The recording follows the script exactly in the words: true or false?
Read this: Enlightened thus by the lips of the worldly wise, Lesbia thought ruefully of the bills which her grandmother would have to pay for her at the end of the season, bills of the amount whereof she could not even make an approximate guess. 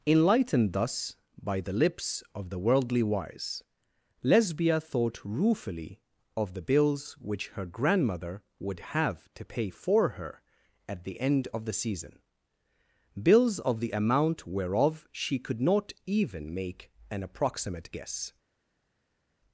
true